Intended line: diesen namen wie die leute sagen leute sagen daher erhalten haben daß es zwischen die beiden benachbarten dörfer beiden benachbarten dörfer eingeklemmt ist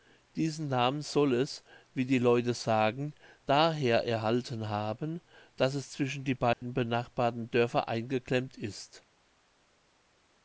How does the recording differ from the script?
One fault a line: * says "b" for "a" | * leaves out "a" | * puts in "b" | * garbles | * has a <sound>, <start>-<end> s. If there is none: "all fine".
* puts in "soll es"
* leaves out "leute sagen"
* has a dropout, 6.5-6.6 s
* leaves out "beiden benachbarten dörfer"